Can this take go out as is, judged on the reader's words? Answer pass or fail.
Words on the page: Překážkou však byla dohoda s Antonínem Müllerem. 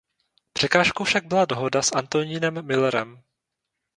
pass